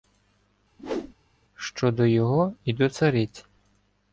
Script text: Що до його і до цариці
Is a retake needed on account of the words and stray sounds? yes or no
yes